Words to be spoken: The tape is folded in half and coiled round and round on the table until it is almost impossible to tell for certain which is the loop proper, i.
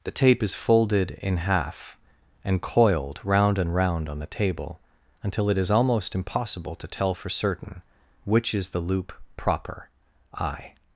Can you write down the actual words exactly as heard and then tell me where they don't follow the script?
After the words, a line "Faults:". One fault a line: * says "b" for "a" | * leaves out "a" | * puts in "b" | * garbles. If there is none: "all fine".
The tape is folded in half and coiled round and round on the table until it is almost impossible to tell for certain which is the loop proper, i.
Faults:
all fine